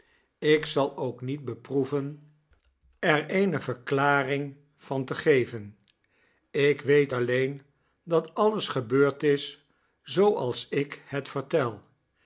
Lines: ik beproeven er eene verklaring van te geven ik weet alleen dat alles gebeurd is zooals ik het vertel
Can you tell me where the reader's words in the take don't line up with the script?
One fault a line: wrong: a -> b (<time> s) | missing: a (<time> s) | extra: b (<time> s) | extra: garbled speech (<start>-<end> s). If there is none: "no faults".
extra: zal ook niet (0.7 s)